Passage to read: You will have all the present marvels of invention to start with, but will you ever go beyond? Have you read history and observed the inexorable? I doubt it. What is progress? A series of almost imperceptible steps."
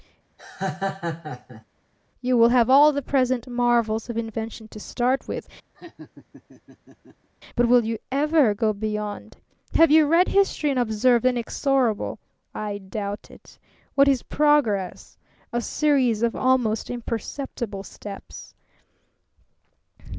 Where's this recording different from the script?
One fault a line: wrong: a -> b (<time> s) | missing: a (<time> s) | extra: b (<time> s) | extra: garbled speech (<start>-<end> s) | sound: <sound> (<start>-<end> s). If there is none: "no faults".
sound: laugh (0.4-1.6 s)
sound: laugh (5.7-7.3 s)